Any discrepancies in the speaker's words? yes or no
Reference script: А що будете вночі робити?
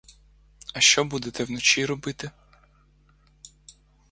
no